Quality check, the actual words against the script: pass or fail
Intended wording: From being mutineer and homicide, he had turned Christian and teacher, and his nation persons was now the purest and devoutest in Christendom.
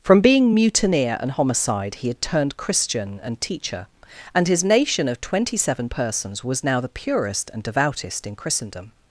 fail